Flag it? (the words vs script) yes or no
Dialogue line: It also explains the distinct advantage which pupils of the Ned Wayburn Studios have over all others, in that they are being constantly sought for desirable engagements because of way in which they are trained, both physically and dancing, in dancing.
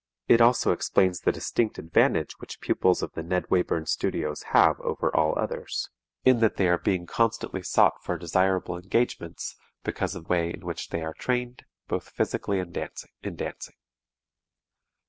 no